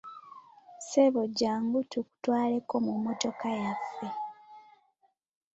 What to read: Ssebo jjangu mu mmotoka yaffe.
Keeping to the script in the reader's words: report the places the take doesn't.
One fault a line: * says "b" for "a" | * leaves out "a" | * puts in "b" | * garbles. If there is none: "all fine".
* puts in "tukutwaleko"